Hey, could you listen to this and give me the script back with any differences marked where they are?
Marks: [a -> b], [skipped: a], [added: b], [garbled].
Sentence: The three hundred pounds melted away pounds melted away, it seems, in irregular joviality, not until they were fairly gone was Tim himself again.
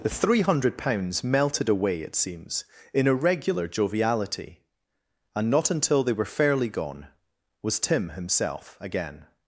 The three hundred pounds melted away [skipped: pounds melted away,] it seems, in irregular joviality, [added: and] not until they were fairly gone was Tim himself again.